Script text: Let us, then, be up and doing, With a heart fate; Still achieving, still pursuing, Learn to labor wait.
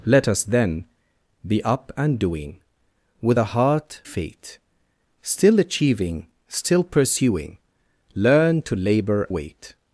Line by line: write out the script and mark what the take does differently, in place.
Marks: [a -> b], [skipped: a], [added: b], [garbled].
Let us, then, be up and doing, With a heart fate; Still achieving, still pursuing, Learn to labor wait.